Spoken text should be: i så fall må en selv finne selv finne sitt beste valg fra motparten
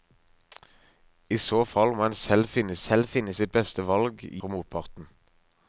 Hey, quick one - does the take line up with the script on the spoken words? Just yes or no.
yes